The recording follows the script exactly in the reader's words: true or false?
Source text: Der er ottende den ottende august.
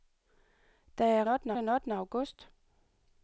true